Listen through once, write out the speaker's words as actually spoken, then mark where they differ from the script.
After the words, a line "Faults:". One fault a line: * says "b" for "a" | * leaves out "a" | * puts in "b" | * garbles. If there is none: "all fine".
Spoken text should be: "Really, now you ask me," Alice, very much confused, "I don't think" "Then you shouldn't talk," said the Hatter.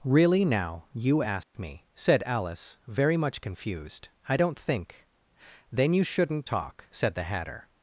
"Really, now you ask me," said Alice, very much confused, "I don't think" "Then you shouldn't talk," said the Hatter.
Faults:
* puts in "said"